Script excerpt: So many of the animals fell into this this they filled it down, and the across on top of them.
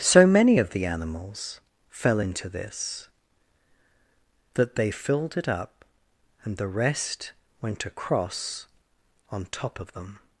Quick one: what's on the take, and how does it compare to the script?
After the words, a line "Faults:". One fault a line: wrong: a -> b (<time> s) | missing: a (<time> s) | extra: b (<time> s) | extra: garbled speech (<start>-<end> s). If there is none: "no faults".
So many of the animals fell into this that they filled it up, and the rest went across on top of them.
Faults:
wrong: this -> that (4.5 s)
wrong: down -> up (5.5 s)
extra: rest went (6.7 s)